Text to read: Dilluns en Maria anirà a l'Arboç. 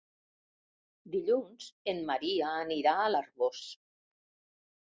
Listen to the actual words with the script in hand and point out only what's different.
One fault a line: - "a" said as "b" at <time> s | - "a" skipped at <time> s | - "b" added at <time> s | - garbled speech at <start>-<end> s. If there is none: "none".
none